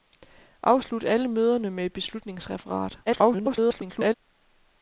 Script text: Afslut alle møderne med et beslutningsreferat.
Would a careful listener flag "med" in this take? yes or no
no